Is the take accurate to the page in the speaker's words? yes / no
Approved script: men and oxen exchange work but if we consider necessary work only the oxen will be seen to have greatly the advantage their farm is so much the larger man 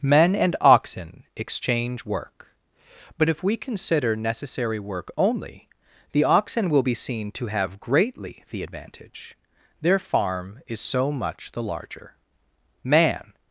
yes